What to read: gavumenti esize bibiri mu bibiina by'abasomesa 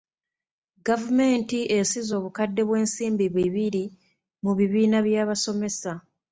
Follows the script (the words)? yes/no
no